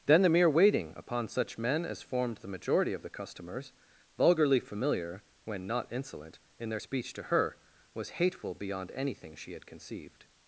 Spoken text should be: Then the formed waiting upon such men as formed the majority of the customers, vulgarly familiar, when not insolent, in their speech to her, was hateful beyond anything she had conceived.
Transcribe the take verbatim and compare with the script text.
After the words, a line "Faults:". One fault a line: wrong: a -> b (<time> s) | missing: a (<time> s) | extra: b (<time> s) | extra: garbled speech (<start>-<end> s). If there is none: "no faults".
Then the mere waiting upon such men as formed the majority of the customers, vulgarly familiar, when not insolent, in their speech to her, was hateful beyond anything she had conceived.
Faults:
wrong: formed -> mere (0.3 s)